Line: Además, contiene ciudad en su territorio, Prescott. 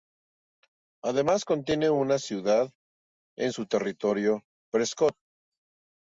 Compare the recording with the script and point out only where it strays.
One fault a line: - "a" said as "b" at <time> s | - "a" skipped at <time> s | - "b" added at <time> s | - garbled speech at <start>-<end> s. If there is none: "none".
- "una" added at 1.9 s